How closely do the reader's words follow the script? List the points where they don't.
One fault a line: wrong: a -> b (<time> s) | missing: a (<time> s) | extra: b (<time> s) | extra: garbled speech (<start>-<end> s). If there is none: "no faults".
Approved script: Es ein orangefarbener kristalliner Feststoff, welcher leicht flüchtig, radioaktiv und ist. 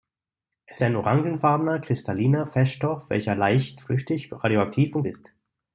no faults